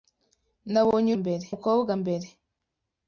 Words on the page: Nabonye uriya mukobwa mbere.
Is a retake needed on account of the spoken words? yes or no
yes